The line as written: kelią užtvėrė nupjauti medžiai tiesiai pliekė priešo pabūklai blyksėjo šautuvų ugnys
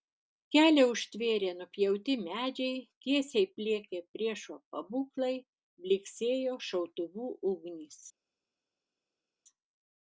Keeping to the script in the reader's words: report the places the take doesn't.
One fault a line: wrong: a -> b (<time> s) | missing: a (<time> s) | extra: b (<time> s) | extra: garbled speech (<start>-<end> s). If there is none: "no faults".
no faults